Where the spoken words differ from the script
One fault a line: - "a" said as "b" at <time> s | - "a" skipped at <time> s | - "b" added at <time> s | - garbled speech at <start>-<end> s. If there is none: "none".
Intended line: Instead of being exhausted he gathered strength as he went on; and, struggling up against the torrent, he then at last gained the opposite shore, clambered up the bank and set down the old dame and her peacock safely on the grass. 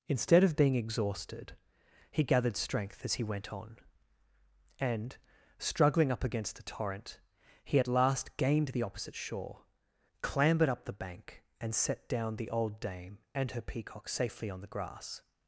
- "then" skipped at 7.8 s